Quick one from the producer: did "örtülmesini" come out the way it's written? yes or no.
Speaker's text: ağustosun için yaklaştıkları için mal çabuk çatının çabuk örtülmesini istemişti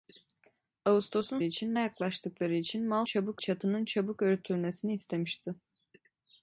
yes